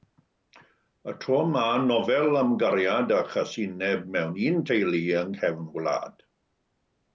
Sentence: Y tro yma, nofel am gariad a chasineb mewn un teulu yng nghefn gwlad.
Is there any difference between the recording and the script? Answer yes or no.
no